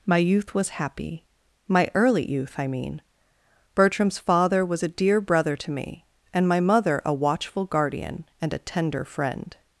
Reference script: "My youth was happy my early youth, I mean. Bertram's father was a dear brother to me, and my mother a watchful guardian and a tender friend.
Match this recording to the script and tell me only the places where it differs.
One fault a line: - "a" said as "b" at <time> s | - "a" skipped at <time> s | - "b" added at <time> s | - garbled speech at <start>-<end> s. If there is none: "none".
none